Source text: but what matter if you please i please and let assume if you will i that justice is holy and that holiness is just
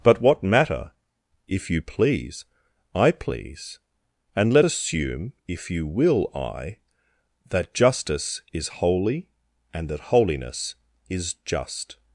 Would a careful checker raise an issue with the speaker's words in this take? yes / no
no